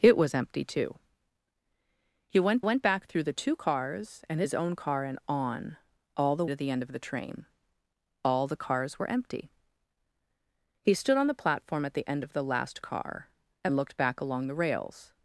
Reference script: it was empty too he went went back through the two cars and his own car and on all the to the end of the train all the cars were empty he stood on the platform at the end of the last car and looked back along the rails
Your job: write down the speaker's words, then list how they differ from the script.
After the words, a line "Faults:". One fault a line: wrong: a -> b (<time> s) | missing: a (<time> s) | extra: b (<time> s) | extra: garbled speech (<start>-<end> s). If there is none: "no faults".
it was empty too he went went back through the two cars and his own car and on all the to the end of the train all the cars were empty he stood on the platform at the end of the last car and looked back along the rails
Faults:
no faults